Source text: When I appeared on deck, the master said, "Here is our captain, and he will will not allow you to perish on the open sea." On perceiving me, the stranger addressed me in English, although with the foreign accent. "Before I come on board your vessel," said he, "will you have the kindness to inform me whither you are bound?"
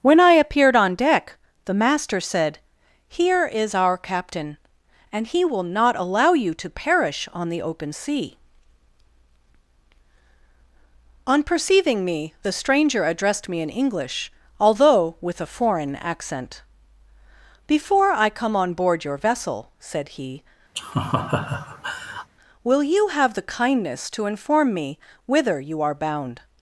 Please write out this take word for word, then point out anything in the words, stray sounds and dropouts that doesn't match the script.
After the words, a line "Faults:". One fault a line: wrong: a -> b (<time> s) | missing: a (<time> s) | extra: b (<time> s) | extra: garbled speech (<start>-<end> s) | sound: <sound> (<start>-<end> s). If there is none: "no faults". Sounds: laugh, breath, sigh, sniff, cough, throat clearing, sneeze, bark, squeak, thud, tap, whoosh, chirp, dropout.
When I appeared on deck, the master said, "Here is our captain, and he will not allow you to perish on the open sea." On perceiving me, the stranger addressed me in English, although with a foreign accent. "Before I come on board your vessel," said he, "will you have the kindness to inform me whither you are bound?"
Faults:
missing: will (5.6 s)
wrong: the -> a (15.4 s)
sound: laugh (20.7-22.3 s)